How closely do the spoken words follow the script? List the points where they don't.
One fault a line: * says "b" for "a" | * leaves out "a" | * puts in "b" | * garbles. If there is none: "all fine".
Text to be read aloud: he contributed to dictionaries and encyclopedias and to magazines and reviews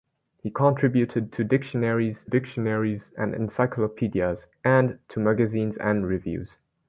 * puts in "dictionaries"